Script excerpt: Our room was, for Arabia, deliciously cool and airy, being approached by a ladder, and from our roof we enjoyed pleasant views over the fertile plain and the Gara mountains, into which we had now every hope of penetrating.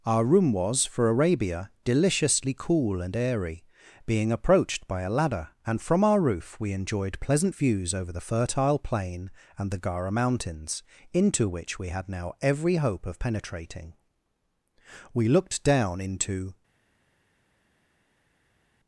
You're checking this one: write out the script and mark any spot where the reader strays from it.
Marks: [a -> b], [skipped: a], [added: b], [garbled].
Our room was, for Arabia, deliciously cool and airy, being approached by a ladder, and from our roof we enjoyed pleasant views over the fertile plain and the Gara mountains, into which we had now every hope of penetrating. [added: We looked down into]